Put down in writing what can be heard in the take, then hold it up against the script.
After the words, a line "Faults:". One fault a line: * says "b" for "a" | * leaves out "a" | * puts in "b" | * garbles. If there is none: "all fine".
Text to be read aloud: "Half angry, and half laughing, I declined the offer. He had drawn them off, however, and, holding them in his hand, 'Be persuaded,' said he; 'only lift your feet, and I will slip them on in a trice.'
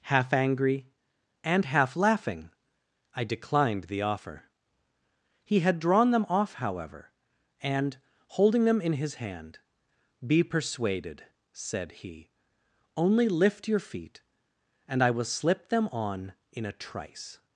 "Half angry, and half laughing, I declined the offer. He had drawn them off, however, and, holding them in his hand, 'Be persuaded,' said he; 'only lift your feet, and I will slip them on in a trice.'
Faults:
all fine